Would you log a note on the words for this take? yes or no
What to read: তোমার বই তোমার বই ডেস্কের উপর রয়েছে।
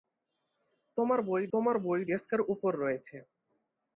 no